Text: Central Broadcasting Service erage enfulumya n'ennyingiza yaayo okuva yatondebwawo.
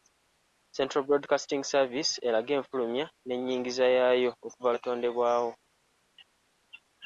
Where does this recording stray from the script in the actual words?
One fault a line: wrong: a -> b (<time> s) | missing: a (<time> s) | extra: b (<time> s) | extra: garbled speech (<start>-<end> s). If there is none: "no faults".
no faults